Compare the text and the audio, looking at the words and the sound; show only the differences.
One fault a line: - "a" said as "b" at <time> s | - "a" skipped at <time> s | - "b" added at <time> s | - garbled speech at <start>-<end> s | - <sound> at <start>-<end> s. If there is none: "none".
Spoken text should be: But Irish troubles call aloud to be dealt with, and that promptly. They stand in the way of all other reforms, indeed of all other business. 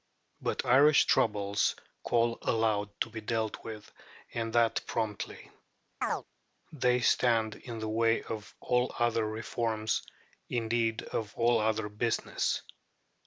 - chirp at 6.0-6.2 s